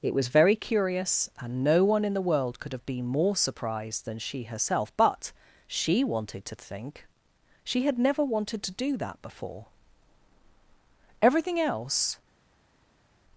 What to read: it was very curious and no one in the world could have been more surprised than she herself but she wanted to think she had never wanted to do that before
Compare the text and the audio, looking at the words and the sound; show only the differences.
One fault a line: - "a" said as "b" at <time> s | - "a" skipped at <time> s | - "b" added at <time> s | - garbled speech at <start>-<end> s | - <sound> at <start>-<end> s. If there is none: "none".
- "everything else" added at 11.2 s